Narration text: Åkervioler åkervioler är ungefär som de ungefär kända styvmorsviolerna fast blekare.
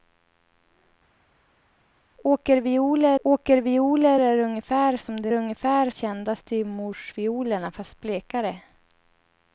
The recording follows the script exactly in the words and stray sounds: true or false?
true